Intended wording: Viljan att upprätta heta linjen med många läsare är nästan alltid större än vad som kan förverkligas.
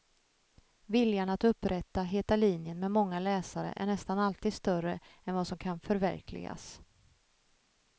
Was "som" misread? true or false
false